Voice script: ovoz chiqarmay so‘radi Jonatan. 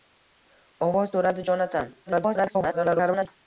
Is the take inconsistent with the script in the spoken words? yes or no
yes